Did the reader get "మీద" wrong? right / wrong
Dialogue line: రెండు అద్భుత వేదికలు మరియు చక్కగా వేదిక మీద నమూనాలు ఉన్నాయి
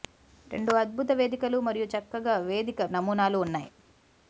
wrong